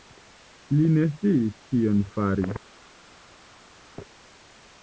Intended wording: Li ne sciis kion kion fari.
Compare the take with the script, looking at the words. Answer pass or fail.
fail